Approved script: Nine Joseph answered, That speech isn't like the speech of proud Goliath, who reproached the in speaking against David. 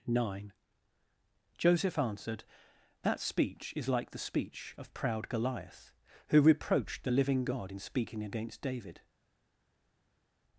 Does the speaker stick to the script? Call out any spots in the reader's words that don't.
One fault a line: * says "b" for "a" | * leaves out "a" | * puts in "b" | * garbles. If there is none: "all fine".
* says "is" for "isn't"
* puts in "living God"